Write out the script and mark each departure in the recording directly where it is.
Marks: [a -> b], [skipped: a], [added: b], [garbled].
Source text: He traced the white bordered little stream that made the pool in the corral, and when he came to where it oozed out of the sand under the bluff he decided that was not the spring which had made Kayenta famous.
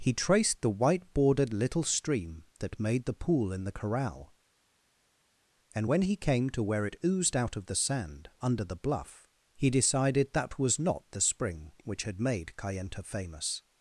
He traced the white bordered little stream that made the pool in the corral, and when he came to where it oozed out of the sand under the bluff he decided that was not the spring which had made Kayenta famous.